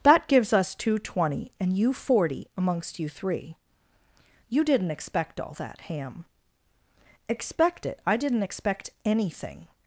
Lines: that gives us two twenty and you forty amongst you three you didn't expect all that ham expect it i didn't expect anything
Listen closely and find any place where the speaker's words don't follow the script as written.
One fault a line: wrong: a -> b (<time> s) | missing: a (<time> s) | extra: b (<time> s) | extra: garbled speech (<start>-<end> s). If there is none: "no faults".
no faults